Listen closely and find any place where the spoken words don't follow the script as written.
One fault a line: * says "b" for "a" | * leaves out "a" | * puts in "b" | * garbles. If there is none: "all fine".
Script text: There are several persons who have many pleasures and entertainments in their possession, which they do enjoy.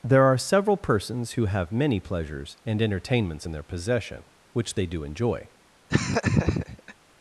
all fine